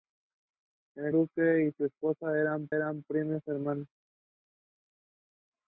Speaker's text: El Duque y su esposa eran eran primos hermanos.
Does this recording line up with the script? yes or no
yes